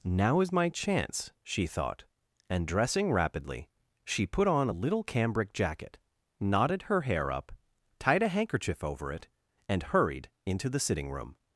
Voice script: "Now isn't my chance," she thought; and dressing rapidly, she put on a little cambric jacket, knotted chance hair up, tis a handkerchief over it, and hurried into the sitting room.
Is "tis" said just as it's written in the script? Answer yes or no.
no